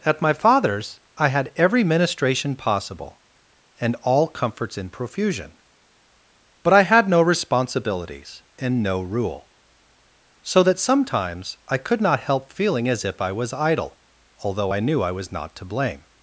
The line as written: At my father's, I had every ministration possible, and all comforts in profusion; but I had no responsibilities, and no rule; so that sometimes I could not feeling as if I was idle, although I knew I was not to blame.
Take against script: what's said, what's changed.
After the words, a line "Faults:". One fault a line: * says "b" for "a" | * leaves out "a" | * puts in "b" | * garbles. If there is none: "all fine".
At my father's, I had every ministration possible, and all comforts in profusion; but I had no responsibilities, and no rule; so that sometimes I could not help feeling as if I was idle, although I knew I was not to blame.
Faults:
* puts in "help"